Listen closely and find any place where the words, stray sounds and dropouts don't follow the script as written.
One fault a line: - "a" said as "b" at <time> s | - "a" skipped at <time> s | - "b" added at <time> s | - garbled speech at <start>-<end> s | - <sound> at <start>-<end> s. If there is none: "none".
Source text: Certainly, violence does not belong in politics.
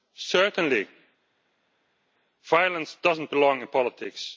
none